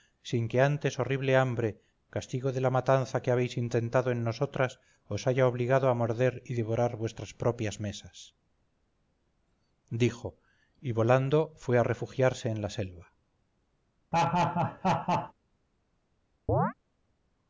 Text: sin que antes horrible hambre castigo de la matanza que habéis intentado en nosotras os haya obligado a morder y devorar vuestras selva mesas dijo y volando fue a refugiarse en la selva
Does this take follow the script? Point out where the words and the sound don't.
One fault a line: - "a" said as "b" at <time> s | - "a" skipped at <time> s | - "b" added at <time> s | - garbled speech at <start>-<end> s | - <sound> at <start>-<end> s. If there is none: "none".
- "selva" said as "propias" at 7.3 s
- laugh at 14.1-15.3 s
- chirp at 16.5-16.7 s